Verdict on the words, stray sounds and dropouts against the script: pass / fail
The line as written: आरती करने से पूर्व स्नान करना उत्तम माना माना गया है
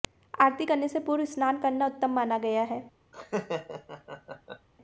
fail